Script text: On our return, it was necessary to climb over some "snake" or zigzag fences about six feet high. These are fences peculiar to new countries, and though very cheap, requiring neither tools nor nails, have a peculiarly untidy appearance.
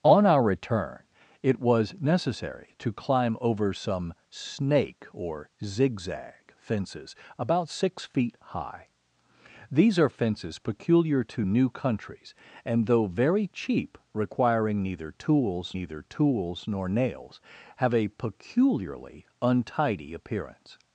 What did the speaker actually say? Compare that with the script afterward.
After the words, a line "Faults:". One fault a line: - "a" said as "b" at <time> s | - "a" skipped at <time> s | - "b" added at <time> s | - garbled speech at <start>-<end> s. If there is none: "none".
On our return, it was necessary to climb over some "snake" or zigzag fences about six feet high. These are fences peculiar to new countries, and though very cheap, requiring neither tools neither tools nor nails, have a peculiarly untidy appearance.
Faults:
- "neither tools" added at 15.7 s